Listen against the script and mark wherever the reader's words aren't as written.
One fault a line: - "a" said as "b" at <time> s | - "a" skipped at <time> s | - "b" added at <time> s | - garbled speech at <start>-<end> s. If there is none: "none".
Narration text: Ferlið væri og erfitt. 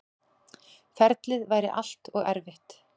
- "allt" added at 1.8 s